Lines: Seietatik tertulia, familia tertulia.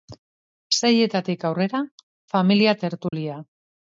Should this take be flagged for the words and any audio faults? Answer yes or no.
yes